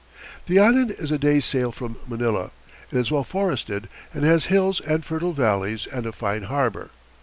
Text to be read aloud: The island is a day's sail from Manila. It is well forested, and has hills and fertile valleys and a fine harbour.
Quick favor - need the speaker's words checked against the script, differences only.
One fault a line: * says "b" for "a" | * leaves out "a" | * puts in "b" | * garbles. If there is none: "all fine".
all fine